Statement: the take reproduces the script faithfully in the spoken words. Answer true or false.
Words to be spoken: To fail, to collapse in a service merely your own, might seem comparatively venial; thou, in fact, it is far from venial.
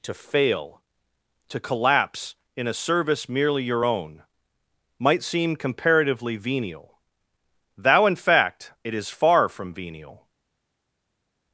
true